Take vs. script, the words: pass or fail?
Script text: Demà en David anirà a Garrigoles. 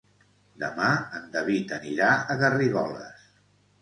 pass